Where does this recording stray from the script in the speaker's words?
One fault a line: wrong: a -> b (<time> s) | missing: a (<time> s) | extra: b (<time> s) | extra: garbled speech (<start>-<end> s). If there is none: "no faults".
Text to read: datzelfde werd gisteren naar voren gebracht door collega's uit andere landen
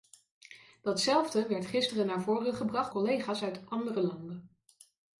missing: door (2.9 s)